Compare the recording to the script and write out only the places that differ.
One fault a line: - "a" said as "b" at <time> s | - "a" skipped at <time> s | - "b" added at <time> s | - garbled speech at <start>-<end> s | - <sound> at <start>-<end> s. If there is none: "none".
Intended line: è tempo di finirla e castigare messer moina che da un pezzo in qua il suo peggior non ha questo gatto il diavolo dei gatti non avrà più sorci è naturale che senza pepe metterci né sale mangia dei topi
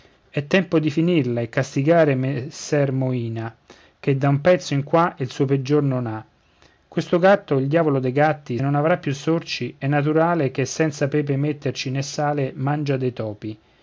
none